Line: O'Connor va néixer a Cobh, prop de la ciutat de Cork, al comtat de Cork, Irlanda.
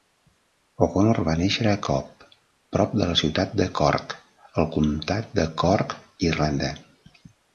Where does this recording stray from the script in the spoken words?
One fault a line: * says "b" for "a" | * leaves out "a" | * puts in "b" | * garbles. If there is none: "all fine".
all fine